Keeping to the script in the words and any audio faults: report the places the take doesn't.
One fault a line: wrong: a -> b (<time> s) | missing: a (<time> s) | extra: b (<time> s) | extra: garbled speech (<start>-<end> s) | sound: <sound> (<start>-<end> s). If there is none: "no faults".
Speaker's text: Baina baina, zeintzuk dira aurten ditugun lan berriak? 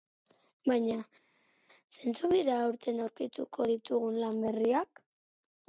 missing: baina (0.9 s)
extra: aurkituko (3.0 s)